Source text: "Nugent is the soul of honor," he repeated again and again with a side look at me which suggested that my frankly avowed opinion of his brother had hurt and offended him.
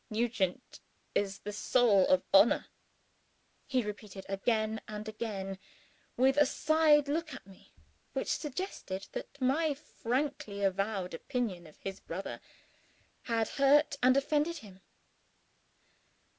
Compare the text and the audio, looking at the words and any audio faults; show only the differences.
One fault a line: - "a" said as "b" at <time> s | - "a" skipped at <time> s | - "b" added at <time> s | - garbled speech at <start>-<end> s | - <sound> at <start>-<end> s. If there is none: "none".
none